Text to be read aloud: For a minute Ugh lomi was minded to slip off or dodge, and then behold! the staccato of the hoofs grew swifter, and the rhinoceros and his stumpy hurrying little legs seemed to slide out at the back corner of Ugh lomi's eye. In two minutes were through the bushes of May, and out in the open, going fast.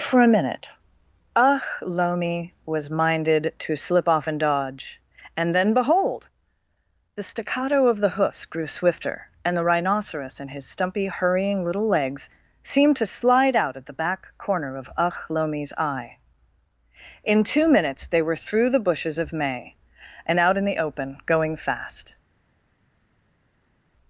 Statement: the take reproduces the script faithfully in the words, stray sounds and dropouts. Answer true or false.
false